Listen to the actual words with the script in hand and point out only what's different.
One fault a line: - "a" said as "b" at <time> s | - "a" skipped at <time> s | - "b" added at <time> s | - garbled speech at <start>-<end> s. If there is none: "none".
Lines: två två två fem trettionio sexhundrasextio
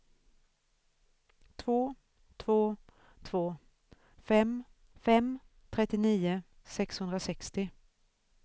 - "fem" added at 5.0 s